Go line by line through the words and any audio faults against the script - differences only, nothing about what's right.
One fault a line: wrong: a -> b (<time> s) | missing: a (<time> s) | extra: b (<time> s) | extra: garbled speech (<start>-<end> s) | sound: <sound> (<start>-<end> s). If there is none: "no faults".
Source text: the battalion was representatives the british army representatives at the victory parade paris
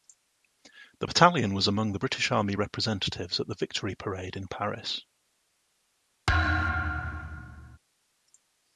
wrong: representatives -> among (1.7 s)
extra: in (4.4 s)
sound: thud (6.3-7.8 s)